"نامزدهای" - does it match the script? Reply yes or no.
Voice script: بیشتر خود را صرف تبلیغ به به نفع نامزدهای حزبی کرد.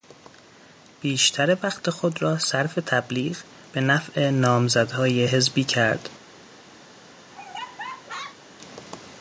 yes